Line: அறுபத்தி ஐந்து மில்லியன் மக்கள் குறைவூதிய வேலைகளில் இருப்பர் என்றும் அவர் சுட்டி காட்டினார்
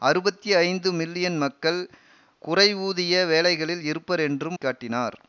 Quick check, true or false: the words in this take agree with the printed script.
false